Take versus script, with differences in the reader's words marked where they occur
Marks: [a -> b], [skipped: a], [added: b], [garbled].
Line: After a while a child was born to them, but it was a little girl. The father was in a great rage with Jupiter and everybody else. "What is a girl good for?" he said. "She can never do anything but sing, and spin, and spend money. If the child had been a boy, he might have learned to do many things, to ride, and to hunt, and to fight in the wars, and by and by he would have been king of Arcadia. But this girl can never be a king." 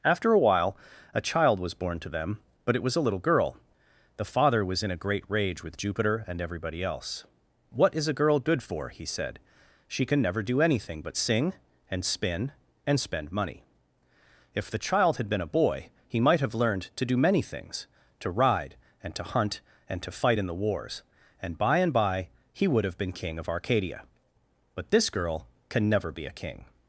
After a while a child was born to them, but it was a little girl. The father was in a great rage with Jupiter and everybody else. "What is a girl good for?" he said. "She can never do anything but sing, and spin, and spend money. If the child had been a boy, he might have learned to do many things, to ride, and to hunt, and to fight in the wars, and by and by he would have been king of Arcadia. But this girl can never be a king."